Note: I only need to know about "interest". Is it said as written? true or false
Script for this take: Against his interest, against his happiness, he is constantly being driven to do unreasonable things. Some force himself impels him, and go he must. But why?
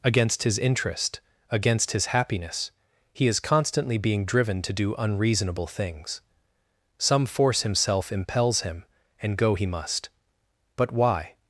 true